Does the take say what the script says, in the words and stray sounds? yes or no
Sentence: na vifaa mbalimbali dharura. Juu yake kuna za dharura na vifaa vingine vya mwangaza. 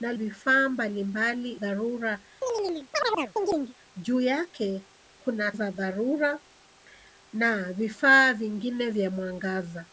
no